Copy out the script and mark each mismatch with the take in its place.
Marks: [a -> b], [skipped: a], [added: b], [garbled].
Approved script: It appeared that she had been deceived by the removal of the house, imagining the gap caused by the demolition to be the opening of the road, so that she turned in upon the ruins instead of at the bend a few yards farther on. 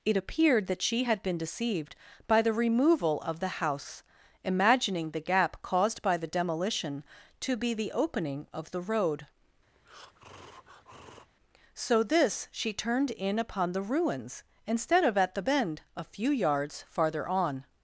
It appeared that she had been deceived by the removal of the house, imagining the gap caused by the demolition to be the opening of the road, so [that -> this] she turned in upon the ruins instead of at the bend a few yards farther on.